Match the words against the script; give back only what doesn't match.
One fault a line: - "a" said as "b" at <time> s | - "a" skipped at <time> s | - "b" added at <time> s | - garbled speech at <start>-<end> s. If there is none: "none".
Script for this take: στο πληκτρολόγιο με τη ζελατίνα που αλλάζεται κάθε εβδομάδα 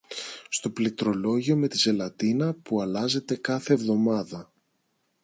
none